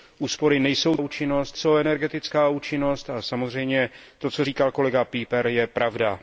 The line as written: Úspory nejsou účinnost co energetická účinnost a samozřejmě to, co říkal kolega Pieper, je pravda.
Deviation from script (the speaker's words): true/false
false